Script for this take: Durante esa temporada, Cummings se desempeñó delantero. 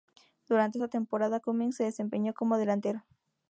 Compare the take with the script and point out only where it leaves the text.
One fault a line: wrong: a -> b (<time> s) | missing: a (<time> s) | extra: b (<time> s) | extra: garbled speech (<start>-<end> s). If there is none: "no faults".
extra: como (2.3 s)